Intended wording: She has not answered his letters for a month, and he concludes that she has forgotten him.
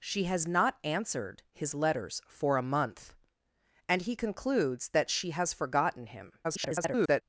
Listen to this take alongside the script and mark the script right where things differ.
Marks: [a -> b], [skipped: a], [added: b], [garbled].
She has not answered his letters for a month, and he concludes that she has forgotten him. [garbled]